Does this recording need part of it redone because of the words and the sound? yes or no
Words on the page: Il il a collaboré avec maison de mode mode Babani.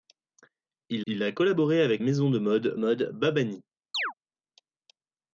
yes